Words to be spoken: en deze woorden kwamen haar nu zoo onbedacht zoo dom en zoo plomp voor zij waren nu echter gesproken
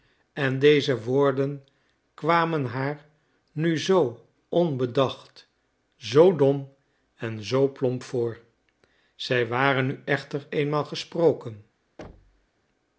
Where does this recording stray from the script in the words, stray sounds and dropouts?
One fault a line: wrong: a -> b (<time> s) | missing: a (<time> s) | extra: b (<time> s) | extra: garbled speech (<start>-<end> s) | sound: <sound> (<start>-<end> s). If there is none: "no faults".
extra: eenmaal (10.5 s)
sound: thud (12.0-12.5 s)